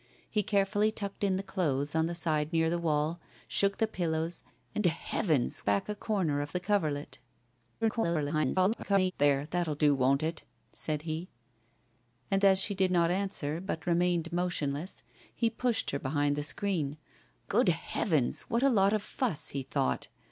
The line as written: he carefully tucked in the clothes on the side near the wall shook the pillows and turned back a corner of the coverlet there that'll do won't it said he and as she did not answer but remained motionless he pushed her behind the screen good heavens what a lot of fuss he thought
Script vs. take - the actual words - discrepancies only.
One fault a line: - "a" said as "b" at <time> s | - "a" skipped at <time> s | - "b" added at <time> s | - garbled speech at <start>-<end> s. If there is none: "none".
- "turned" said as "heavens" at 4.9 s
- garbled speech at 7.8-9.1 s